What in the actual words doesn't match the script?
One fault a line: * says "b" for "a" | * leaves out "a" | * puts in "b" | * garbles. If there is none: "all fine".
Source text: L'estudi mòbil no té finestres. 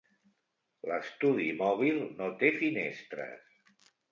all fine